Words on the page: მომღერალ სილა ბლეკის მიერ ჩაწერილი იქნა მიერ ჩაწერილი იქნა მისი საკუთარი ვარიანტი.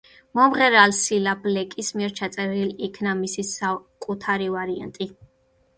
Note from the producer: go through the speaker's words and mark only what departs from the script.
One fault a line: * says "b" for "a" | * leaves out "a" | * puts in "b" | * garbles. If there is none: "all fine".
* leaves out "მიერ ჩაწერილი იქნა"